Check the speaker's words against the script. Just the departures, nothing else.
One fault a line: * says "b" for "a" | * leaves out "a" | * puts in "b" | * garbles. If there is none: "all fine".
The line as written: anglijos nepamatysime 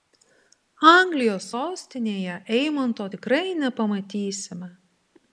* puts in "sostinėje eimanto tikrai"